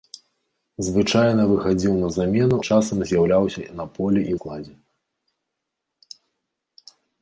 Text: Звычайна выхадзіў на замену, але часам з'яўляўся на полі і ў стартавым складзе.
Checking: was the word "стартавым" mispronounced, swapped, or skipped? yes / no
yes